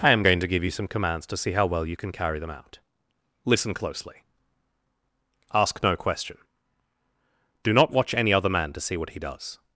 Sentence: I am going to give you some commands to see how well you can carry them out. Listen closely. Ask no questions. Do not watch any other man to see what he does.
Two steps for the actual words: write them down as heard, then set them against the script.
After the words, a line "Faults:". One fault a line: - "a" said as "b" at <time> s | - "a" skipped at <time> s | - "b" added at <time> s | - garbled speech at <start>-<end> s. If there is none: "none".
I am going to give you some commands to see how well you can carry them out. Listen closely. Ask no question. Do not watch any other man to see what he does.
Faults:
- "questions" said as "question" at 6.0 s